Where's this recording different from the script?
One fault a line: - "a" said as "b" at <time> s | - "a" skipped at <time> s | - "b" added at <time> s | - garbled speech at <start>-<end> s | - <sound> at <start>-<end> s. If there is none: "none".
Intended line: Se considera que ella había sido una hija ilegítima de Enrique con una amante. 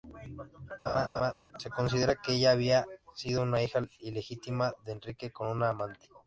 - laugh at 0.9-1.3 s